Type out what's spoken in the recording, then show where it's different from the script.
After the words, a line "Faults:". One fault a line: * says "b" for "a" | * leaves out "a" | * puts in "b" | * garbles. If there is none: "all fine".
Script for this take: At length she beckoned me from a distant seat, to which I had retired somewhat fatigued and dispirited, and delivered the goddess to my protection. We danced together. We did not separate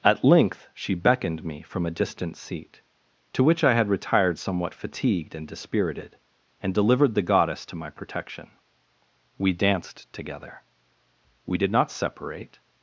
At length she beckoned me from a distant seat, to which I had retired somewhat fatigued and dispirited, and delivered the goddess to my protection. We danced together. We did not separate
Faults:
all fine